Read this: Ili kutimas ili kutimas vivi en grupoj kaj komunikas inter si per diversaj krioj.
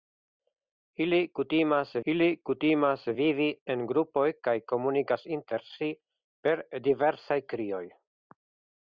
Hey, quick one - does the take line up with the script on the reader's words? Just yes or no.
yes